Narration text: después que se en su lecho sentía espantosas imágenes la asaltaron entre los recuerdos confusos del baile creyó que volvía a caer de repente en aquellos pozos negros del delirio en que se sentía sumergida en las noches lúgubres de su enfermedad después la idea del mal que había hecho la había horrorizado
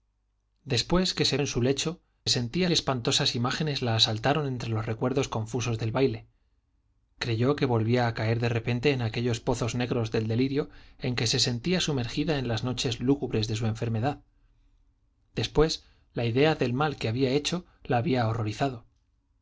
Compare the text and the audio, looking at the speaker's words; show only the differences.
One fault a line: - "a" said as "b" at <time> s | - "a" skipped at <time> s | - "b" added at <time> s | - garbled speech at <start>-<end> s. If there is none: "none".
none